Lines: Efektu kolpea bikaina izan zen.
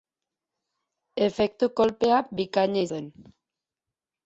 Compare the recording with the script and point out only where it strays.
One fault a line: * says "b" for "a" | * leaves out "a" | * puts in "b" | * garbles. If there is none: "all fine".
* leaves out "izan"